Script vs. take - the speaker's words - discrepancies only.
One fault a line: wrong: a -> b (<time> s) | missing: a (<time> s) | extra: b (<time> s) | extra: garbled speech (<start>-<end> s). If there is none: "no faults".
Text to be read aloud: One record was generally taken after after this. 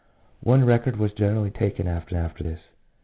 no faults